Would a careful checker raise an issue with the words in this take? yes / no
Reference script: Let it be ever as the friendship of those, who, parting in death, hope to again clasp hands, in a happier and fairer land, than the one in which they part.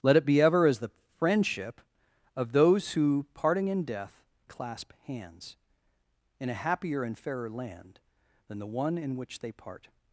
yes